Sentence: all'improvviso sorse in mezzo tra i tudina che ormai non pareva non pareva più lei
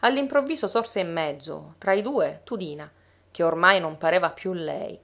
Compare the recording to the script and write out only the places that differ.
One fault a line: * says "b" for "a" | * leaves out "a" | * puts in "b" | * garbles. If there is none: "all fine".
* puts in "due"
* leaves out "non pareva"